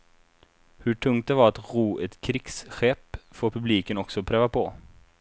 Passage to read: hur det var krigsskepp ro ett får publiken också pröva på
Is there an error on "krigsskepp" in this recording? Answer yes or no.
yes